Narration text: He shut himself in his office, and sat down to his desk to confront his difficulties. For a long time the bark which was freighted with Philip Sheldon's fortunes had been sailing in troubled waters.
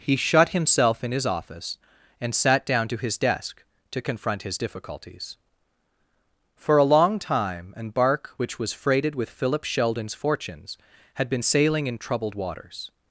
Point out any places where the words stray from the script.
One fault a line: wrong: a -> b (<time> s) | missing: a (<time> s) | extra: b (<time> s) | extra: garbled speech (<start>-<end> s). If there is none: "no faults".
wrong: the -> an (7.8 s)